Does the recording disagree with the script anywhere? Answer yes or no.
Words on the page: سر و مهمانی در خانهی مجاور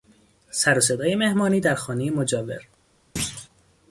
yes